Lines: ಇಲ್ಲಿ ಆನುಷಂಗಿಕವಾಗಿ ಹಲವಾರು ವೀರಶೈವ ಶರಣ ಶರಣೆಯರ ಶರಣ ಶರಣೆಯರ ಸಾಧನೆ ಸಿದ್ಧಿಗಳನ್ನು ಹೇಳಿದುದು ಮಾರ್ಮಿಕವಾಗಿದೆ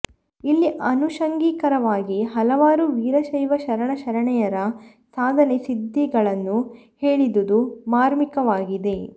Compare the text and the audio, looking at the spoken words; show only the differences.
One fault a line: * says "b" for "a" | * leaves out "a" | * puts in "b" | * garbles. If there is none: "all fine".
* leaves out "ಶರಣ ಶರಣೆಯರ"